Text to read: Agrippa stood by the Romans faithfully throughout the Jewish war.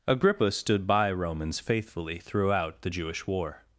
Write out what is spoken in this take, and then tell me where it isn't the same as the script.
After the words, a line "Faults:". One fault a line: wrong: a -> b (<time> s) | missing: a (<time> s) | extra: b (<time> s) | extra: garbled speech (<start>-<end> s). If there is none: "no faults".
Agrippa stood by Romans faithfully throughout the Jewish war.
Faults:
missing: the (1.1 s)